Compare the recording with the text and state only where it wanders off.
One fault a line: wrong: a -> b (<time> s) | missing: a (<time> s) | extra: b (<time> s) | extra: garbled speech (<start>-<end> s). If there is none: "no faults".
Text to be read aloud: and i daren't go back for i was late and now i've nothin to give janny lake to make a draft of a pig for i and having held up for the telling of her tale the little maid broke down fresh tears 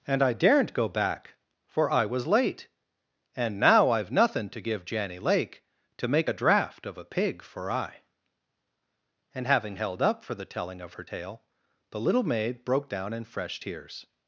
extra: in (13.1 s)